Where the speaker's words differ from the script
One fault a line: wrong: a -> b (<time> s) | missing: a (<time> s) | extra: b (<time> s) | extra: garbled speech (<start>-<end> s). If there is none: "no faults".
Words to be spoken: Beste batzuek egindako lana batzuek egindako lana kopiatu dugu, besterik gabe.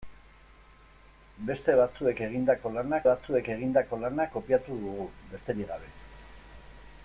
no faults